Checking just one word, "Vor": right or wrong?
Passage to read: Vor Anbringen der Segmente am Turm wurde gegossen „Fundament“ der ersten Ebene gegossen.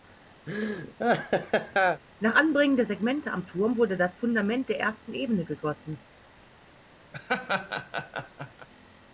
wrong